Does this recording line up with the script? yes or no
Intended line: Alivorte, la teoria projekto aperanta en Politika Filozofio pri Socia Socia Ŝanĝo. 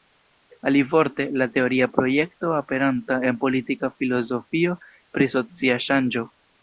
no